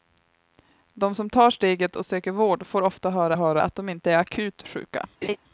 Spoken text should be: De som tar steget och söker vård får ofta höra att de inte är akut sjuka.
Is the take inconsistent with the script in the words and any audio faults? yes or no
yes